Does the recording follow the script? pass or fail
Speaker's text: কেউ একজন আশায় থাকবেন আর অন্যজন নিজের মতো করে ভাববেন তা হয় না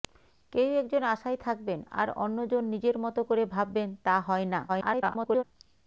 fail